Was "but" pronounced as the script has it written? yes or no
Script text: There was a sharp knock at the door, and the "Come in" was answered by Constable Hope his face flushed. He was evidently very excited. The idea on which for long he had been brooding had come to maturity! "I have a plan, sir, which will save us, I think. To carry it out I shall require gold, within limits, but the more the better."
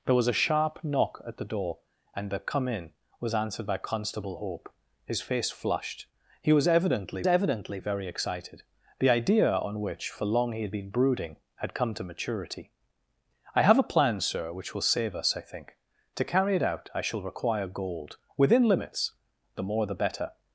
no